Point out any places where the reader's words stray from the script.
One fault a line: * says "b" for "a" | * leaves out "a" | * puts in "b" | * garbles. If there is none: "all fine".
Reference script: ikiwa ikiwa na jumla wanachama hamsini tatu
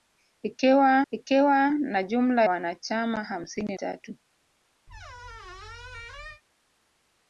all fine